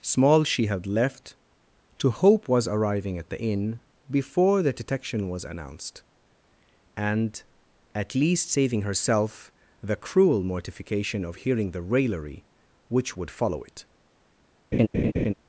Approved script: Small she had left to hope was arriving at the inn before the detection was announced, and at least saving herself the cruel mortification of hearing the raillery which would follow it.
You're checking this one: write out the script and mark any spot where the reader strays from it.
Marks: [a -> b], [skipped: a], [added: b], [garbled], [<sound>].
Small she had left to hope was arriving at the inn before the detection was announced, and at least saving herself the cruel mortification of hearing the raillery which would follow it. [laugh]